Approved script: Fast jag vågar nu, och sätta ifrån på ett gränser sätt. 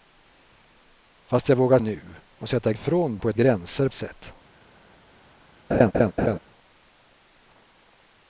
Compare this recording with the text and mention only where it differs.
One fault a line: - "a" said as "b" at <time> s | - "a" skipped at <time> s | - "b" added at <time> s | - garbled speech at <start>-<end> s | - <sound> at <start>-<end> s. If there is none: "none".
- laugh at 5.7-6.4 s